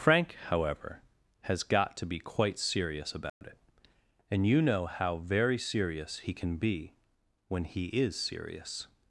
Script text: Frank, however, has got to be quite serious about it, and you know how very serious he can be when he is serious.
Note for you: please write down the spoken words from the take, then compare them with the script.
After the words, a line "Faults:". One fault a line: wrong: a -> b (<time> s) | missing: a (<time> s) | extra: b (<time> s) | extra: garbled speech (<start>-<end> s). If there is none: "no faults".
Frank, however, has got to be quite serious about it, and you know how very serious he can be when he is serious.
Faults:
no faults